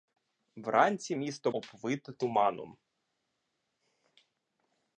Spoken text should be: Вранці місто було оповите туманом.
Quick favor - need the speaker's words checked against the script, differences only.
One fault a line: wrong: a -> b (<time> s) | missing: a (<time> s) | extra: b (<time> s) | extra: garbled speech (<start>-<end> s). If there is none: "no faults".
missing: було (1.5 s)